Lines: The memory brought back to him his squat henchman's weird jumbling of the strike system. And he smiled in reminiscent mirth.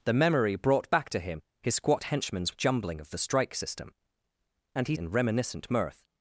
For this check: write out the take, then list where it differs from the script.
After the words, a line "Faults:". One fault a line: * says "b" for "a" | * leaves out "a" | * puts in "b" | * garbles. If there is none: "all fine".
The memory brought back to him his squat henchman's jumbling of the strike system. And he in reminiscent mirth.
Faults:
* leaves out "weird"
* leaves out "smiled"